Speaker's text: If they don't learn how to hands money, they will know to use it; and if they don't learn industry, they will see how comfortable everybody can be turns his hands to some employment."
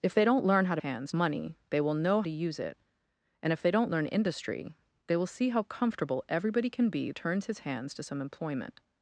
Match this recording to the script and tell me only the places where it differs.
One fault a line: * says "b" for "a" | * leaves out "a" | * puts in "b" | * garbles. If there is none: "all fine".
all fine